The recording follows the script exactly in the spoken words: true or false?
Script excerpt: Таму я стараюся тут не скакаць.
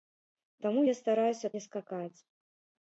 false